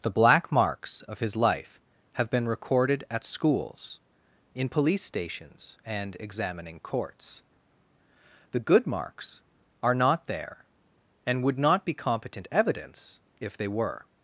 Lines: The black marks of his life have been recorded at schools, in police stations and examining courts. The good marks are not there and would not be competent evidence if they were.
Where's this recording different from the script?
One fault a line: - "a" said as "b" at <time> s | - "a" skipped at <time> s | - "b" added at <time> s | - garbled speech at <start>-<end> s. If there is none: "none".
none